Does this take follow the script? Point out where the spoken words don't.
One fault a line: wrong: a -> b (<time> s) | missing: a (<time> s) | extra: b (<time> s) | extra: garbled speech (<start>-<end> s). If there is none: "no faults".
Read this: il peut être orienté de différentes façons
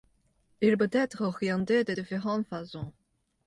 no faults